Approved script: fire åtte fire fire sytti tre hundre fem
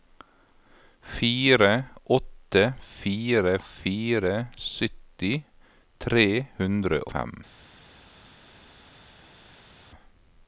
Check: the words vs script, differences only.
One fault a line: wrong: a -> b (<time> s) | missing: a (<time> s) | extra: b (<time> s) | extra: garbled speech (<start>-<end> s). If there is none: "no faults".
no faults